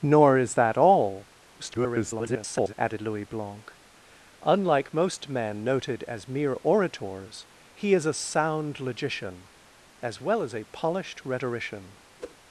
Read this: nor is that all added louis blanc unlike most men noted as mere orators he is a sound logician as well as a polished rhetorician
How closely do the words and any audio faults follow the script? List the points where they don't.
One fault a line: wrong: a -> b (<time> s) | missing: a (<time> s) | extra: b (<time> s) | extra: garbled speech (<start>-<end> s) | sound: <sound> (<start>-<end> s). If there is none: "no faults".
extra: garbled speech (1.6-2.7 s)
sound: whoosh (12.2-12.4 s)